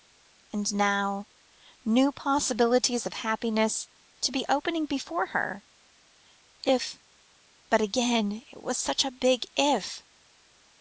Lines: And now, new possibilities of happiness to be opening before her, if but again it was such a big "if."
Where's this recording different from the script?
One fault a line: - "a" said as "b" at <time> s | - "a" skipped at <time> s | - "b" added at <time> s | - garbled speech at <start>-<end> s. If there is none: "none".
none